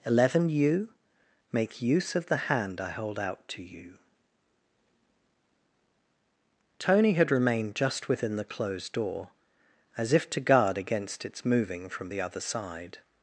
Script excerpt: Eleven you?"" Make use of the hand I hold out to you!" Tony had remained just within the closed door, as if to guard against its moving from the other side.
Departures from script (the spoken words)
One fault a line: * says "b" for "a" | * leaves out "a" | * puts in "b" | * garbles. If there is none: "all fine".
all fine